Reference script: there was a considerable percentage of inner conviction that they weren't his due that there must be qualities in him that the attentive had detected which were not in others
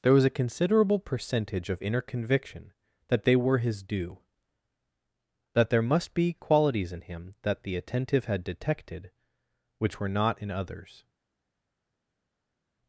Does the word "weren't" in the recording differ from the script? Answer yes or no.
yes